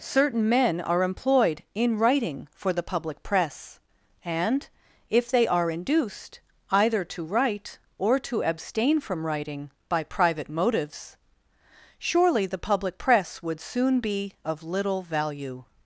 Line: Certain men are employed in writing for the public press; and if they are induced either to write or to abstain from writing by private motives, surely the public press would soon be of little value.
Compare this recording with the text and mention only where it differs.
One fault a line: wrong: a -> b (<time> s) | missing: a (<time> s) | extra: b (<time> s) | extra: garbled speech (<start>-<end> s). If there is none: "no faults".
no faults